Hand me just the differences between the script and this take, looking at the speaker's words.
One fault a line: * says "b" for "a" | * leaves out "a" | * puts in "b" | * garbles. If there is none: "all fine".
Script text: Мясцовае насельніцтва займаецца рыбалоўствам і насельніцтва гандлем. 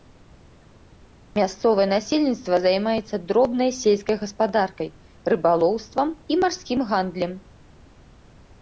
* puts in "дробнай сельскай гаспадаркай"
* says "марскім" for "насельніцтва"